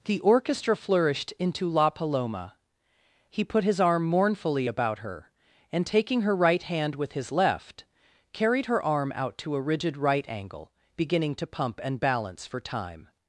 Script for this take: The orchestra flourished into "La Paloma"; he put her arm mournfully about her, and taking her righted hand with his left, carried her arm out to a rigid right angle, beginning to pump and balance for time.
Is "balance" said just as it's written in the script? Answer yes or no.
yes